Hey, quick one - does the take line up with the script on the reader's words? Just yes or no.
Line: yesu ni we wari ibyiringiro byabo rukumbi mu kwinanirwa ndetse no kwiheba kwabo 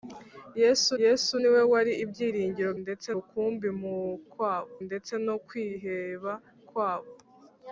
no